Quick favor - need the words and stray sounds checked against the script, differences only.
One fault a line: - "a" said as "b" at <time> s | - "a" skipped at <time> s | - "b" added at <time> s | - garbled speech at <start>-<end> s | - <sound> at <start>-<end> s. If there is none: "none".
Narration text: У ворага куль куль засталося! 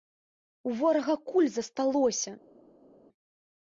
- "куль" skipped at 1.5 s